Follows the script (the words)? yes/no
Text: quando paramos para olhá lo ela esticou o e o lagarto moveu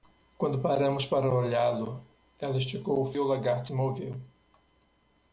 yes